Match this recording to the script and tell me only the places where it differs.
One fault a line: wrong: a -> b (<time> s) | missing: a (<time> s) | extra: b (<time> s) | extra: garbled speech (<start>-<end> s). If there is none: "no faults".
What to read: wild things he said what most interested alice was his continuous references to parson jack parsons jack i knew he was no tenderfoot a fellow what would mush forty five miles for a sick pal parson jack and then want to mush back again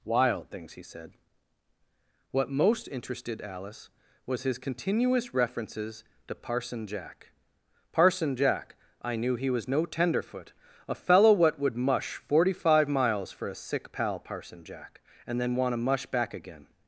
wrong: parsons -> parson (7.9 s)